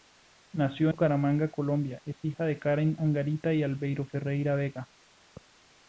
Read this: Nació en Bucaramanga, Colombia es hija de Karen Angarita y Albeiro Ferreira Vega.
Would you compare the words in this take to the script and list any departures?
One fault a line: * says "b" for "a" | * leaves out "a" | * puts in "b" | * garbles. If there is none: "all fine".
* leaves out "en"